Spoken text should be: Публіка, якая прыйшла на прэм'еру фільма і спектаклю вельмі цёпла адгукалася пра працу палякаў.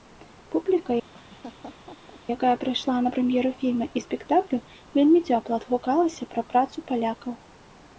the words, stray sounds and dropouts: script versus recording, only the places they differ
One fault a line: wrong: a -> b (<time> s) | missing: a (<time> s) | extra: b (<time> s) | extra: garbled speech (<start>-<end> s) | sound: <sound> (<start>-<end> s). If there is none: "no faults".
sound: laugh (1.1-2.2 s)